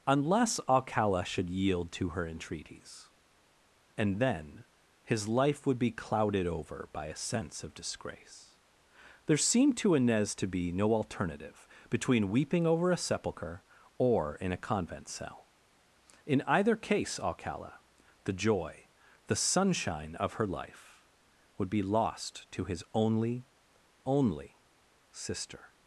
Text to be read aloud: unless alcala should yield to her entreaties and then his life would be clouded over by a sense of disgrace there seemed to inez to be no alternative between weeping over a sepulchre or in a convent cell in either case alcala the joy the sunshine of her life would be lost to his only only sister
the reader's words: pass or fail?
pass